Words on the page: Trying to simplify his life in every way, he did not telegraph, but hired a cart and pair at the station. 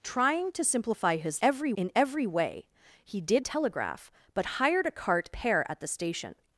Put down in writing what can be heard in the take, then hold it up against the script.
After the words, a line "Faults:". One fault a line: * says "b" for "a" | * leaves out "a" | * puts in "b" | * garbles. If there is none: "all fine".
Trying to simplify his every in every way, he did telegraph, but hired a cart pair at the station.
Faults:
* says "every" for "life"
* leaves out "not"
* leaves out "and"